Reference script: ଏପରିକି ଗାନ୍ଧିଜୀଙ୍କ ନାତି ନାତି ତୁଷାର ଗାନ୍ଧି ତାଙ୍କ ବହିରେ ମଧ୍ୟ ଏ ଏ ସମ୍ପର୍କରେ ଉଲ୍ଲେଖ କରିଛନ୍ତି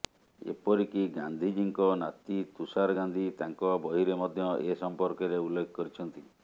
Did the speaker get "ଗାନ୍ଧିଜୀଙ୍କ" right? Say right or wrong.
right